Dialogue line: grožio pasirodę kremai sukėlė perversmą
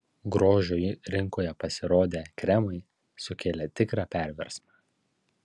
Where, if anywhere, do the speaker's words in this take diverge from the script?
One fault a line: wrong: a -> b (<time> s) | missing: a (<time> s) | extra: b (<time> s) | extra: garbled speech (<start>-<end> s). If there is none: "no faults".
extra: rinkoje (1.1 s)
extra: tikrą (3.8 s)